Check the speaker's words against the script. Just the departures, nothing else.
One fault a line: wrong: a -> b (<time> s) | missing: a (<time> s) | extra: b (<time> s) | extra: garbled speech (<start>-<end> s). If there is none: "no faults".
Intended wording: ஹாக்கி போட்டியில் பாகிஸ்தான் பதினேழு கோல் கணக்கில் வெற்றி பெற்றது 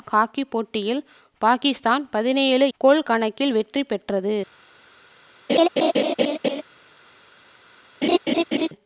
no faults